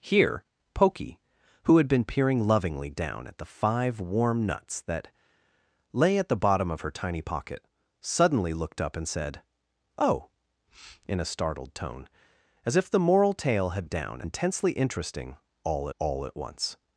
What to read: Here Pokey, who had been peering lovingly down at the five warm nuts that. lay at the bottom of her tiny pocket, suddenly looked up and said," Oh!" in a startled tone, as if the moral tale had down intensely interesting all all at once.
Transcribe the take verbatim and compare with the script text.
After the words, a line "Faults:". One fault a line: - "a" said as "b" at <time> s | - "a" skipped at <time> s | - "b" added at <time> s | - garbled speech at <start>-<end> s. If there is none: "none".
Here Pokey, who had been peering lovingly down at the five warm nuts that. lay at the bottom of her tiny pocket, suddenly looked up and said," Oh!" in a startled tone, as if the moral tale had down intensely interesting all all at once.
Faults:
none